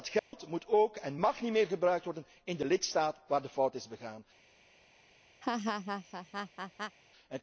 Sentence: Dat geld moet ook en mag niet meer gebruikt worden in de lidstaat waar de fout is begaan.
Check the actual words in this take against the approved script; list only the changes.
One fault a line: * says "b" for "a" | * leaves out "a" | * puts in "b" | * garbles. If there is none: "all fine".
all fine